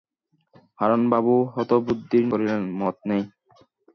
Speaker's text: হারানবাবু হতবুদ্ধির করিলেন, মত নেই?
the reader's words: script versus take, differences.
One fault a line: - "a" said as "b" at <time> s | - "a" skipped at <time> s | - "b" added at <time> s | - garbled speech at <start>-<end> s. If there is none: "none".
none